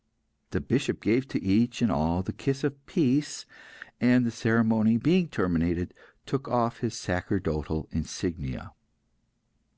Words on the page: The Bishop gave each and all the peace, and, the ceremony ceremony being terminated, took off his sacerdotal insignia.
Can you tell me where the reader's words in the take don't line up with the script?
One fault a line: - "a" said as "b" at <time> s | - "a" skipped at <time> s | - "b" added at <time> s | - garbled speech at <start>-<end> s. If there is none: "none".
- "to" added at 1.3 s
- "kiss of" added at 2.3 s
- "ceremony" skipped at 5.0 s